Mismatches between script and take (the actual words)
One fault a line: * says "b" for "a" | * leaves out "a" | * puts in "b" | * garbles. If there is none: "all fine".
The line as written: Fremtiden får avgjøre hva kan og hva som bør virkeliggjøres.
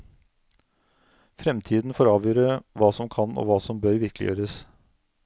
* puts in "som"